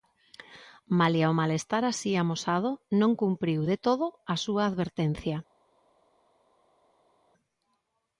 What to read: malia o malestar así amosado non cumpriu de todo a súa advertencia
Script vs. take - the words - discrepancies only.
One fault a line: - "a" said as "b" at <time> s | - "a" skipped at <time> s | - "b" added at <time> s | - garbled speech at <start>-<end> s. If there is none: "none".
none